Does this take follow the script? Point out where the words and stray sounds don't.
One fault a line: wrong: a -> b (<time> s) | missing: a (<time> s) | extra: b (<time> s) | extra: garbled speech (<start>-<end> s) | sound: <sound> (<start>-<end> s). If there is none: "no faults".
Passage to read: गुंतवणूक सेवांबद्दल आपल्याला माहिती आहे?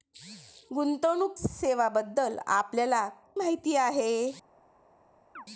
sound: chirp (5.4-5.5 s)